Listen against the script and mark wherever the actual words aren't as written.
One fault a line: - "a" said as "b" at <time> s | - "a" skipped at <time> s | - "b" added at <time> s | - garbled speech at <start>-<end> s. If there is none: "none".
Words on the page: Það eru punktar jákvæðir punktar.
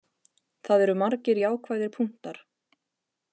- "punktar" said as "margir" at 1.0 s